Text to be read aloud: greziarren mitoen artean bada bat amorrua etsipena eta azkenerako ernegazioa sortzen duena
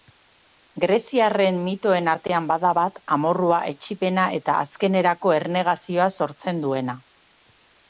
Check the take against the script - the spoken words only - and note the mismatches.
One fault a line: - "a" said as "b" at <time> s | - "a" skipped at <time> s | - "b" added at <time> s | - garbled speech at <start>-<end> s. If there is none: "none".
none